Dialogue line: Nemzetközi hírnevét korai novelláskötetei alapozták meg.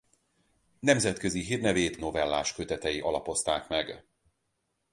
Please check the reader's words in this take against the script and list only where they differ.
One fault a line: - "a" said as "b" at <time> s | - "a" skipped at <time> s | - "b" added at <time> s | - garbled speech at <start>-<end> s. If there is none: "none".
- "korai" skipped at 2.0 s